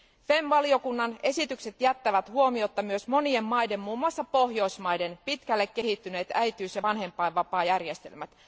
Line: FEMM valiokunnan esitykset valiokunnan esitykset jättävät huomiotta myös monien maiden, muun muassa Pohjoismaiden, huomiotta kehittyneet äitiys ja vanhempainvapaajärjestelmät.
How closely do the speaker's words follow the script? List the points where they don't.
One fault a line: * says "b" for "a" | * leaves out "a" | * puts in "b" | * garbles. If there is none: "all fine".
* leaves out "valiokunnan esitykset"
* says "pitkälle" for "huomiotta"